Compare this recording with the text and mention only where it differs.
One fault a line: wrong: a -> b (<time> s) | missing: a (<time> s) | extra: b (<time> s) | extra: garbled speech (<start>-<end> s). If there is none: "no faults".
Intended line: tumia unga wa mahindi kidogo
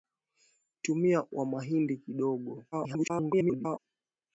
missing: unga (1.2 s)
extra: garbled speech (2.7-3.8 s)